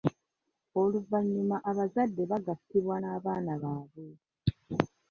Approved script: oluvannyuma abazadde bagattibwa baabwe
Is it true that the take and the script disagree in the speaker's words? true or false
true